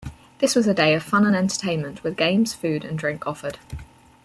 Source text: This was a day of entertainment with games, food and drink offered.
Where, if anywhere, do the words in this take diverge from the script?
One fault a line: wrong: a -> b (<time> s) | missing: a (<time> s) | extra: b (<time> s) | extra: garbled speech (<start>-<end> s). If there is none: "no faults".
extra: fun and (1.0 s)